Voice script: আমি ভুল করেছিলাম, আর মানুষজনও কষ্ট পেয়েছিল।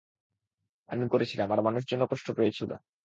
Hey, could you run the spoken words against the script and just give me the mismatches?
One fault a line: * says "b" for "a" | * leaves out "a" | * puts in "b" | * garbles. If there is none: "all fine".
* leaves out "ভুল"